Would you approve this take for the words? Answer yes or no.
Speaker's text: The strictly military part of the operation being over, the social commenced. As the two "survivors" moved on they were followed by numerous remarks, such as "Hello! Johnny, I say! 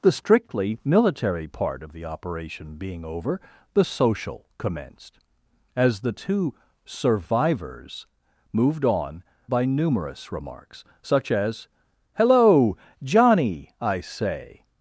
no